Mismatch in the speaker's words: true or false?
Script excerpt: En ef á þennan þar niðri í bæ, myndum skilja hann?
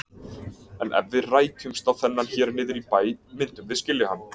true